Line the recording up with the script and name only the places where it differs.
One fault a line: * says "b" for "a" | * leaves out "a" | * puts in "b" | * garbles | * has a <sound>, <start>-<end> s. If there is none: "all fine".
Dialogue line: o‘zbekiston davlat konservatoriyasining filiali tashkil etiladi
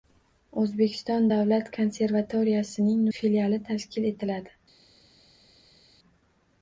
all fine